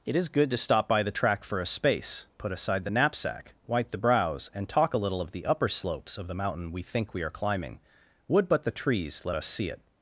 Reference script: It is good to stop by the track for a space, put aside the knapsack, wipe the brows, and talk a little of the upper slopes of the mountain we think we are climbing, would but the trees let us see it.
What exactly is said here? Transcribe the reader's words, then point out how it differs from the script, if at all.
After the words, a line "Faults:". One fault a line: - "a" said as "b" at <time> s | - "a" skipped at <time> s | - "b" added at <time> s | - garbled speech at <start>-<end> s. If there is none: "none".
It is good to stop by the track for a space, put aside the knapsack, wipe the brows, and talk a little of the upper slopes of the mountain we think we are climbing, would but the trees let us see it.
Faults:
none